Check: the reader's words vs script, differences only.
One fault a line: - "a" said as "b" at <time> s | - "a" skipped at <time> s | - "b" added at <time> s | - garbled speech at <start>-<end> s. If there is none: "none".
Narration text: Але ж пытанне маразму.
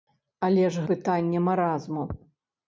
none